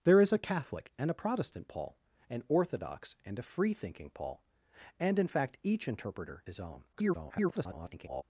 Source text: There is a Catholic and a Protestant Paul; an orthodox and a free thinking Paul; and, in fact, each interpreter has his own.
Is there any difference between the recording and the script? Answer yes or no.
yes